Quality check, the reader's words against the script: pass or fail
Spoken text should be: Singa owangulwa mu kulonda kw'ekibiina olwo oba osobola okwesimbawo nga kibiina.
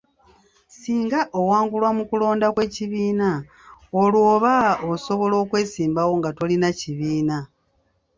fail